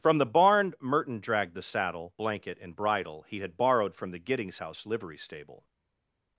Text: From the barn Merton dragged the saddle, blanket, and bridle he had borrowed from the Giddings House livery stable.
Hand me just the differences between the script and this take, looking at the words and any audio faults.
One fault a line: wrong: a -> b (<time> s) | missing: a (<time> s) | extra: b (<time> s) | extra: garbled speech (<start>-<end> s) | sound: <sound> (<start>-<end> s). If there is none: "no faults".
no faults